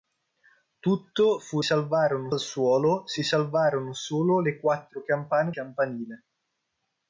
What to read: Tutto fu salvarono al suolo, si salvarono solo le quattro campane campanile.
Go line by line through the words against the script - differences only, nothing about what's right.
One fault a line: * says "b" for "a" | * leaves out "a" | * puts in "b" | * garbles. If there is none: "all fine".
all fine